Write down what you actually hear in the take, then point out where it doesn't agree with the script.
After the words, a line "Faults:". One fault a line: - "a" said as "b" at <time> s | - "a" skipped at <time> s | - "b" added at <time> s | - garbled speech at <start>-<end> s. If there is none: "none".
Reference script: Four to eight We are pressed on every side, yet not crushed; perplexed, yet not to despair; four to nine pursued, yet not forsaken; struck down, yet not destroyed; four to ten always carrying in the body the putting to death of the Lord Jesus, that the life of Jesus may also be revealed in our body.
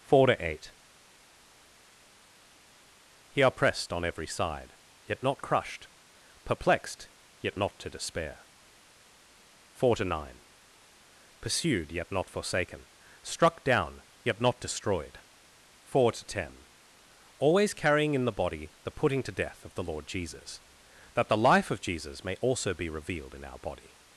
Four to eight He are pressed on every side, yet not crushed; perplexed, yet not to despair; four to nine pursued, yet not forsaken; struck down, yet not destroyed; four to ten always carrying in the body the putting to death of the Lord Jesus, that the life of Jesus may also be revealed in our body.
Faults:
- "We" said as "He" at 3.3 s